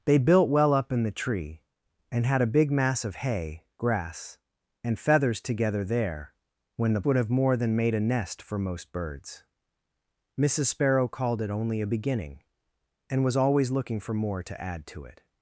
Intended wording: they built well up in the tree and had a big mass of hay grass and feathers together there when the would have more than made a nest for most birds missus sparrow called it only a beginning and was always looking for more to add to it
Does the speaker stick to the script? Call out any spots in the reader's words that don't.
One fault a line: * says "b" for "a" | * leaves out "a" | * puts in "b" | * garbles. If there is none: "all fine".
all fine